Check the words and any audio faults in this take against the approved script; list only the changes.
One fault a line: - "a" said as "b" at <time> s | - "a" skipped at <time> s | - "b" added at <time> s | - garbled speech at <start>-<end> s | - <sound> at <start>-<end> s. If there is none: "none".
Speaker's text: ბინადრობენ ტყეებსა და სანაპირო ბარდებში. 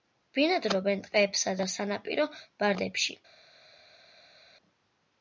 none